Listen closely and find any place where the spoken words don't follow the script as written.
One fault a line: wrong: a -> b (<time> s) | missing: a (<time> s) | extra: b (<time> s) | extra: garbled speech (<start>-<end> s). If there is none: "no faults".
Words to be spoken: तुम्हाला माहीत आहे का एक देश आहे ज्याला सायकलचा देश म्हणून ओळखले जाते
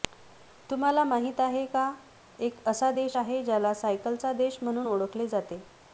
extra: असा (2.7 s)